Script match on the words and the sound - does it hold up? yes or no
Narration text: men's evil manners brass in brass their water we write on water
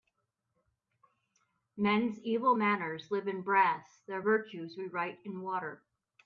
no